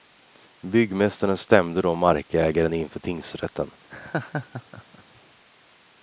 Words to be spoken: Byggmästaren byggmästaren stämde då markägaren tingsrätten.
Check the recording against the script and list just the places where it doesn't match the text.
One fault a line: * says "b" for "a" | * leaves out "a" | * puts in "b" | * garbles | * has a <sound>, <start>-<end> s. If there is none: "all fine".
* leaves out "byggmästaren"
* puts in "inför"
* has a laugh, 3.9-5.2 s